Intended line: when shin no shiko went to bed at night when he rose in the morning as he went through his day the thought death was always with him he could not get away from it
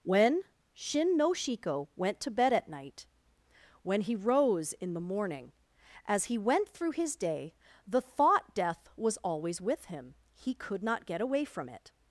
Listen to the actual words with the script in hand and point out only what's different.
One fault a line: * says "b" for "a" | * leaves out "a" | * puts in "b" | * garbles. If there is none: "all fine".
all fine